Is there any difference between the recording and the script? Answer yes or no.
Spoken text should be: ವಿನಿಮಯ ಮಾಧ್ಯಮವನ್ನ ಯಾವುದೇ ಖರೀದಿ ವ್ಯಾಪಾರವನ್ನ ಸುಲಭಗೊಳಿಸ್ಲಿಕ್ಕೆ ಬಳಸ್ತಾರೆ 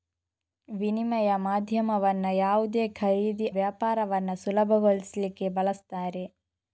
no